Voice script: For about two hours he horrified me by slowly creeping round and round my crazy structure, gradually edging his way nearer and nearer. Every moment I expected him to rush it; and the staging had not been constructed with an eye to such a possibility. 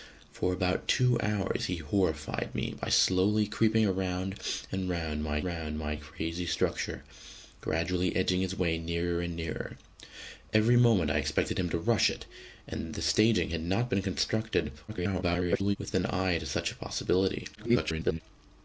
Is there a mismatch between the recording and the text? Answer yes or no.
yes